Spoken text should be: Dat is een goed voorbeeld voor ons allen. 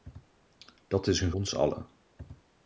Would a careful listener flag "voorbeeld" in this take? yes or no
yes